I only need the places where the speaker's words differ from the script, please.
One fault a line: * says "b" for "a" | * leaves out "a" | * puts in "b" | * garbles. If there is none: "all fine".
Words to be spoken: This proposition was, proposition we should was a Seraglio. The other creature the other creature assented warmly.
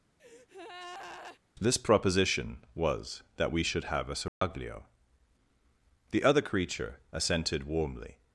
* says "that" for "proposition"
* says "have" for "was"
* leaves out "the other creature"